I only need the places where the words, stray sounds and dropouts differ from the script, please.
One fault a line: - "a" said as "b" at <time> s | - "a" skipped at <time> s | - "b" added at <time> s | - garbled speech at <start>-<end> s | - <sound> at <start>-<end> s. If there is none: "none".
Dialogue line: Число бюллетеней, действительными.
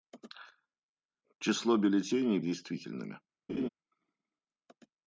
- laugh at 3.5-3.7 s